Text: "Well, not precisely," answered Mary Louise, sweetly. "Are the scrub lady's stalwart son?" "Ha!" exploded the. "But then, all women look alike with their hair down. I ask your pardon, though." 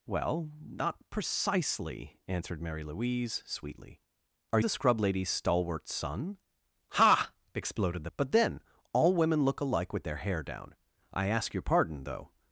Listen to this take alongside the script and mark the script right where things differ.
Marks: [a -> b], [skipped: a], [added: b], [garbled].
"Well, not precisely," answered Mary Louise, sweetly. "Are the scrub lady's stalwart son?" "Ha!" exploded the. "But then, all women look alike with their hair down. I ask your pardon, though."